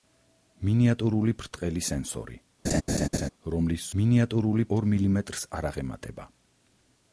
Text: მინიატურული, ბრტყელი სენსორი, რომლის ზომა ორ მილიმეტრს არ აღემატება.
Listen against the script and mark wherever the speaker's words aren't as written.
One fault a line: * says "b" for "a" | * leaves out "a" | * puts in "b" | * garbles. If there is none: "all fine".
* says "მინიატურული" for "ზომა"